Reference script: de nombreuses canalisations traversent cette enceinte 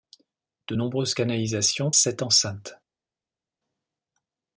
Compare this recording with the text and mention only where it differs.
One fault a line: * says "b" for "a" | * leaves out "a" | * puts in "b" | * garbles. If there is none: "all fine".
* leaves out "traversent"